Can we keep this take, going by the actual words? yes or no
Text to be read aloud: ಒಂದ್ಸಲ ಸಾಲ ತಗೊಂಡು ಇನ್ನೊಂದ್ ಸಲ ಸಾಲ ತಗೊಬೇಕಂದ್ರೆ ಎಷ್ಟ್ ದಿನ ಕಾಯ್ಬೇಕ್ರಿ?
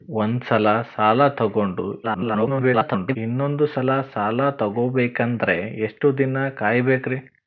no